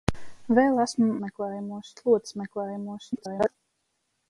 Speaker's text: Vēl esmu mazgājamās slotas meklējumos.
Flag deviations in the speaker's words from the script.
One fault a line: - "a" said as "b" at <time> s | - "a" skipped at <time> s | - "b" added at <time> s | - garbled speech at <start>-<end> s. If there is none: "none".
- "mazgājamās" said as "meklējumos" at 1.2 s
- garbled speech at 3.1-3.5 s